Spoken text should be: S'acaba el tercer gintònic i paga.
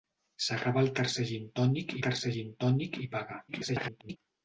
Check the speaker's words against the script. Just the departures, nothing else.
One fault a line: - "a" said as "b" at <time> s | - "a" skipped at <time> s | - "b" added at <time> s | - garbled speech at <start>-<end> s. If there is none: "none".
- "tercer gintònic" added at 2.1 s
- garbled speech at 3.5-4.2 s